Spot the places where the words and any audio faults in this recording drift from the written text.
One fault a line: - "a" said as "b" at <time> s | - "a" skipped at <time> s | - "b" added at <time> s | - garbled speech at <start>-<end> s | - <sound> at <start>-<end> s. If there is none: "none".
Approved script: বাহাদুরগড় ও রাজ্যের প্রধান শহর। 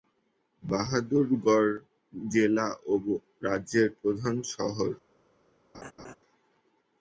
- "জেলা" added at 2.1 s
- laugh at 5.7-6.2 s